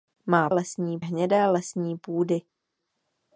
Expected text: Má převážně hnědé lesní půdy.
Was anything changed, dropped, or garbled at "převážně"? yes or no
yes